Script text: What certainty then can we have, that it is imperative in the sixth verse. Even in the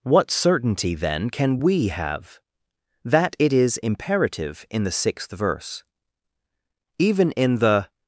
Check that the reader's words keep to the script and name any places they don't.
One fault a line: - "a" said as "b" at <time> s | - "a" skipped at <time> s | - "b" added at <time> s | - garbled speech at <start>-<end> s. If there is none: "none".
none